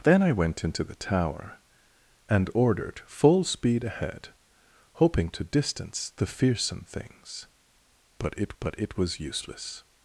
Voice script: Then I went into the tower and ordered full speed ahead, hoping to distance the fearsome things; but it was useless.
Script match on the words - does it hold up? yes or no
no